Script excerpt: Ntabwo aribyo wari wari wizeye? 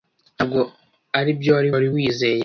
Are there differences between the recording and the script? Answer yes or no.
no